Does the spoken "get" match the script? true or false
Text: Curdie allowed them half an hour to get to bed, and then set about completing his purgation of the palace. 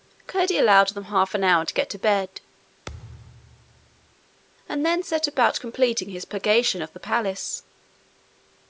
true